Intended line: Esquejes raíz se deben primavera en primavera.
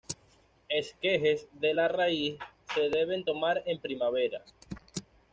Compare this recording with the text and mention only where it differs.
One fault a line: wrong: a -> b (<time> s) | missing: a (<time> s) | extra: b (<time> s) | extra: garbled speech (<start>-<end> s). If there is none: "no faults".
extra: de la (1.6 s)
wrong: primavera -> tomar (3.2 s)